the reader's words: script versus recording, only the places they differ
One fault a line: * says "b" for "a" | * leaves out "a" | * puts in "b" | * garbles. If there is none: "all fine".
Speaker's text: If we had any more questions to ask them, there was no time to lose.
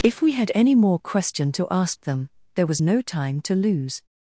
* says "question" for "questions"